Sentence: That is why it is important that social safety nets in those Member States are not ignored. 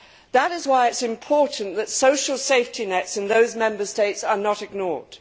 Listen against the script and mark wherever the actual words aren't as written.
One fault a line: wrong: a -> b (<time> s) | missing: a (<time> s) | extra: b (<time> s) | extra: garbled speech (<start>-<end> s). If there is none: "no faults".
no faults